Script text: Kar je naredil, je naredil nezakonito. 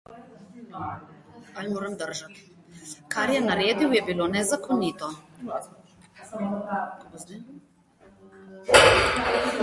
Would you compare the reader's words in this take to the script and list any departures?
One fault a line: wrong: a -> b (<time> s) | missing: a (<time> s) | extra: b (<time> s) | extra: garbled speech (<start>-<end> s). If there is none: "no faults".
wrong: naredil -> bilo (4.0 s)